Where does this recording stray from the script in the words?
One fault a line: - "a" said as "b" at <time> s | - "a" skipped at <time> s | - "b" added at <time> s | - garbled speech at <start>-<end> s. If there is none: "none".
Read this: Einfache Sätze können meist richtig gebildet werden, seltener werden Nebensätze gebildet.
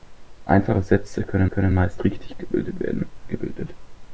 - "können" added at 1.4 s
- "seltener werden Nebensätze" skipped at 3.1 s